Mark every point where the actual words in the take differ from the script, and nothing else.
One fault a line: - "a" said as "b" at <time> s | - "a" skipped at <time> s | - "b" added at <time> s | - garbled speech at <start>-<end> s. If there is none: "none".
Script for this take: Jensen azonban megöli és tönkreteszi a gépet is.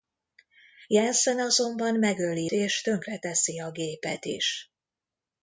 none